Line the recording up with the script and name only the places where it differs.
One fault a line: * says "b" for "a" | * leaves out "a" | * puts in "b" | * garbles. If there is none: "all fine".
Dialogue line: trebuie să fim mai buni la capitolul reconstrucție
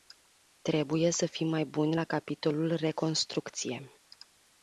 all fine